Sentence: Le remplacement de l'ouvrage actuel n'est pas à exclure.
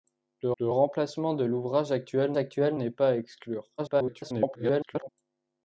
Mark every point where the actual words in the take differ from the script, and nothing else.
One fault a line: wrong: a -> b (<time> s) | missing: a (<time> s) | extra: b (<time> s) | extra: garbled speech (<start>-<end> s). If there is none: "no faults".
extra: le (0.6 s)
extra: actuel (2.4 s)
extra: garbled speech (3.8-5.1 s)